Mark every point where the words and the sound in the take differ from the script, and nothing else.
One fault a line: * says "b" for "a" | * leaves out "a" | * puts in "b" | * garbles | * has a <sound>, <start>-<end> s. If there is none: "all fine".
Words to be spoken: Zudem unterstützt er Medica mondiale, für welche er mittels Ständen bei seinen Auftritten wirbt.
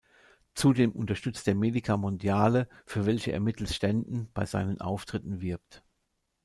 all fine